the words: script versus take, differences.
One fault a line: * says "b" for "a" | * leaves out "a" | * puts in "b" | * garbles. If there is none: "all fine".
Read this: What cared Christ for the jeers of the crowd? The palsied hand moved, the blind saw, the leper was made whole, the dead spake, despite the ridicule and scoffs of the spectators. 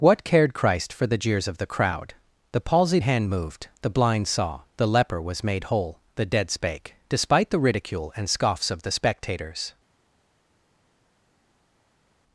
all fine